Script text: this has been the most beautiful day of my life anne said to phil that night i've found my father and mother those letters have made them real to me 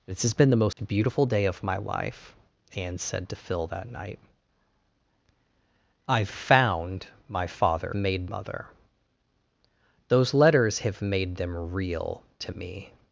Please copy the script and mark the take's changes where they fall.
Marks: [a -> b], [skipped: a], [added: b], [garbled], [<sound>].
this has been the most [dropout] beautiful day of my life anne said to phil that night i've found my father [and -> made] mother those letters have made them real to me